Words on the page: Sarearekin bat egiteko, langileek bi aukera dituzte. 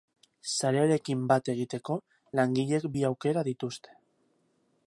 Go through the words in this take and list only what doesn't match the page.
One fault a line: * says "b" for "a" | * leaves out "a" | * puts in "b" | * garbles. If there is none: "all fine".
all fine